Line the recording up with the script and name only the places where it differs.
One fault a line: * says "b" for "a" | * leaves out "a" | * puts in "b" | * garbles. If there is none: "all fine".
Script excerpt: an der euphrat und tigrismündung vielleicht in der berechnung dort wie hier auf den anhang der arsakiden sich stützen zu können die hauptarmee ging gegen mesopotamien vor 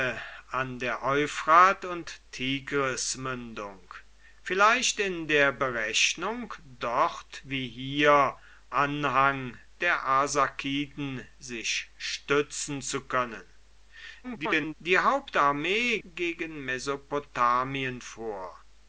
* leaves out "auf den"
* garbles
* leaves out "ging"